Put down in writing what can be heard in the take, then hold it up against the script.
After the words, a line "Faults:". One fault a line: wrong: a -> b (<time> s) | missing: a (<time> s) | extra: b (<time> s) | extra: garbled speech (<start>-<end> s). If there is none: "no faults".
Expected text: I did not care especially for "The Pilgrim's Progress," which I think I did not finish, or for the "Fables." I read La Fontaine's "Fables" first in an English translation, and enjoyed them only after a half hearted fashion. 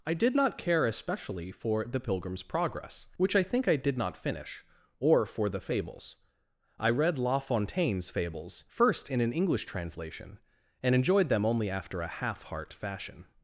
I did not care especially for "The Pilgrim's Progress," which I think I did not finish, or for the "Fables." I read La Fontaine's "Fables" first in an English translation, and enjoyed them only after a half heart fashion.
Faults:
wrong: hearted -> heart (12.4 s)